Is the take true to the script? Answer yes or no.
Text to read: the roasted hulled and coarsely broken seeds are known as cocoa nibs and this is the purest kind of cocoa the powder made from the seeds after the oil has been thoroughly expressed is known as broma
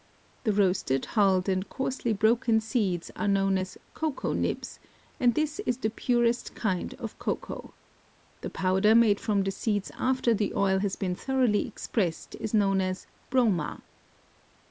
yes